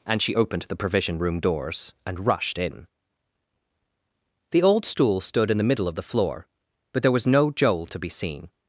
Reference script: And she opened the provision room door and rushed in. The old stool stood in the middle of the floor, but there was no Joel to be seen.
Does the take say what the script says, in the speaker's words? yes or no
no